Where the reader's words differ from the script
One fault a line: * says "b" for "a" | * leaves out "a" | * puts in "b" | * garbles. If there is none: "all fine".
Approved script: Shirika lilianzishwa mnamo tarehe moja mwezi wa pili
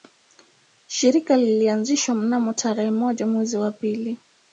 all fine